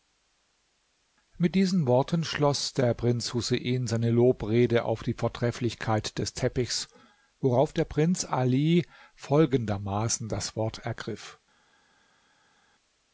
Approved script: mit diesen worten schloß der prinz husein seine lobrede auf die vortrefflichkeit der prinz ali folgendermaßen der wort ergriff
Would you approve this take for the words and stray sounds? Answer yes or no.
no